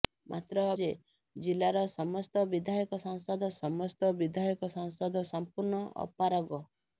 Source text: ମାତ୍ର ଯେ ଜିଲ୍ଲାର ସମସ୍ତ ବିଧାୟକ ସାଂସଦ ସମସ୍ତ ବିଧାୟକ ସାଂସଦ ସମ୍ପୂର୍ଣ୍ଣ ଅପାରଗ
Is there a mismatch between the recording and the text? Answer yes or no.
no